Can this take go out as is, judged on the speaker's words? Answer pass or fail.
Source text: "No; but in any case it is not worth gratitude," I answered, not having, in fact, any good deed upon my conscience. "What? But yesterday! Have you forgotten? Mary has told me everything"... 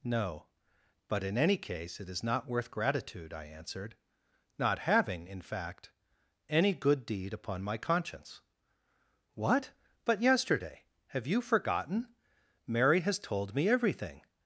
pass